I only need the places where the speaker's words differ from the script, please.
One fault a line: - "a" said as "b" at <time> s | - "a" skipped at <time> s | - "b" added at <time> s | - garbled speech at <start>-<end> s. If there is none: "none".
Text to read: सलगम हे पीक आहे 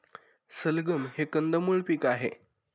- "कंदमुळ" added at 1.3 s